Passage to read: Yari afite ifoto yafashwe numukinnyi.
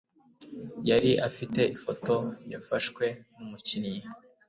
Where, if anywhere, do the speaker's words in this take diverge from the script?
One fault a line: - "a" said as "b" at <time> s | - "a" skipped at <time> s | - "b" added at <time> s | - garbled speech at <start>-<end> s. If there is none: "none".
none